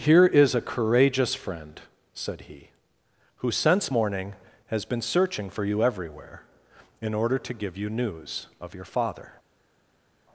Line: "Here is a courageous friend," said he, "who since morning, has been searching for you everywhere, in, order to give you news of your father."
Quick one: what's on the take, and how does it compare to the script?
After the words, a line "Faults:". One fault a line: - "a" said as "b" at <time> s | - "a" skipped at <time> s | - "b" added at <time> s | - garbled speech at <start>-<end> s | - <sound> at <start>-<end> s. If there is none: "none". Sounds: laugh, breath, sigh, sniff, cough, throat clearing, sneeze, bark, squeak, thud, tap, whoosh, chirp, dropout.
"Here is a courageous friend," said he, "who since morning, has been searching for you everywhere, in, order to give you news of your father."
Faults:
none